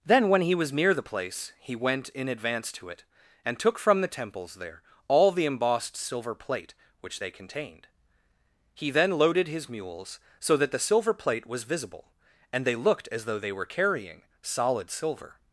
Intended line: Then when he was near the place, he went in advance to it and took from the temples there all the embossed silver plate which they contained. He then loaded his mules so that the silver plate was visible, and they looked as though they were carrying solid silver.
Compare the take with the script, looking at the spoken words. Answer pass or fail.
pass